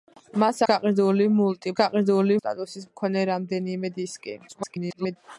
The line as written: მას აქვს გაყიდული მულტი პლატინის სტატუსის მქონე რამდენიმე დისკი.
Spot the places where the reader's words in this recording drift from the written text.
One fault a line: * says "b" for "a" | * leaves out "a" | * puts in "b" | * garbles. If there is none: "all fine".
* leaves out "აქვს"
* says "გაყიდული" for "პლატინის"
* garbles